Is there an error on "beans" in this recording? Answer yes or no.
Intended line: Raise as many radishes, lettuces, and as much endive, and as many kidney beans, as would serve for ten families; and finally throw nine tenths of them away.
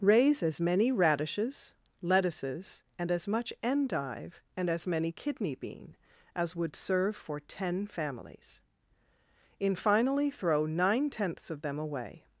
yes